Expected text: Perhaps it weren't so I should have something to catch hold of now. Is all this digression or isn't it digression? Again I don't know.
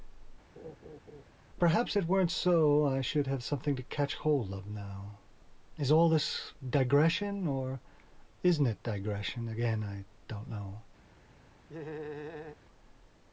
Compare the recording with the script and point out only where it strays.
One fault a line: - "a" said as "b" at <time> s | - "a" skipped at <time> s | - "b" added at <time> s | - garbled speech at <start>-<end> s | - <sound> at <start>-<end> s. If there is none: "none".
- laugh at 0.6-1.2 s
- laugh at 11.7-12.6 s